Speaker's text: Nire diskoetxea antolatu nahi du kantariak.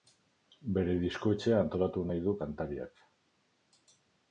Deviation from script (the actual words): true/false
true